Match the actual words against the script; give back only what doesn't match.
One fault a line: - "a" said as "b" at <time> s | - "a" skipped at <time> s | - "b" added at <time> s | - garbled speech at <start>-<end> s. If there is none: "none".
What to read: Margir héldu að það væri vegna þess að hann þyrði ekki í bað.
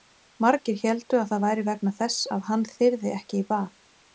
none